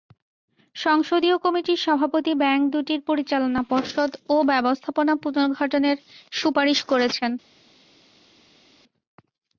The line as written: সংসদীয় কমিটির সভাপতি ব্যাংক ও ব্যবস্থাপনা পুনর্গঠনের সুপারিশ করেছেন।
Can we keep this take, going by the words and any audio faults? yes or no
no